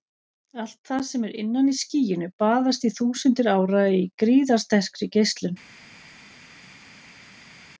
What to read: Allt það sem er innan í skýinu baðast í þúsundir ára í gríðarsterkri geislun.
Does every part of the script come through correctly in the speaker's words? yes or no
yes